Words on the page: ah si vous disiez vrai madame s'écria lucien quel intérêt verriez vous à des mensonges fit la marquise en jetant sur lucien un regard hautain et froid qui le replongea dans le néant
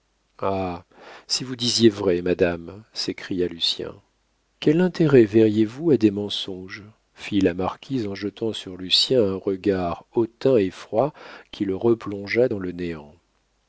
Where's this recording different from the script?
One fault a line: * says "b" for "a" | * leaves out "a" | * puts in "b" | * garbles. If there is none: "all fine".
all fine